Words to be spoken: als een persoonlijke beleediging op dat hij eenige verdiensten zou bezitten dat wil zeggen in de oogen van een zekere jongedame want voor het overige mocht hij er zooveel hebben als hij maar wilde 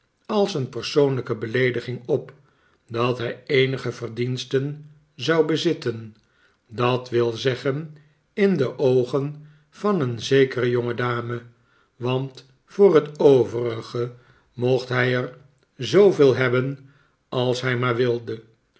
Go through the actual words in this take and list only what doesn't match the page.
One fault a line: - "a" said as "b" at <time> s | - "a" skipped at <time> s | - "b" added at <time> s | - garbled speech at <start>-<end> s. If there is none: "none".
none